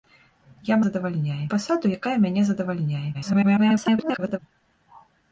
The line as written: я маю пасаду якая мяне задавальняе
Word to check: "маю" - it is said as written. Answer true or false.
false